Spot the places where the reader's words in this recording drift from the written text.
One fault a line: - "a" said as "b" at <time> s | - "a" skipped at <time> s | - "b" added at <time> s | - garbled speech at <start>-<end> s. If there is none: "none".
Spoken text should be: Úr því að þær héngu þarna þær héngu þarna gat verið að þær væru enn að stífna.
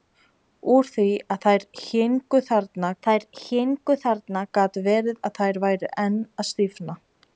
none